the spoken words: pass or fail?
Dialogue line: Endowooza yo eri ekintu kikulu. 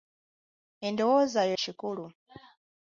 fail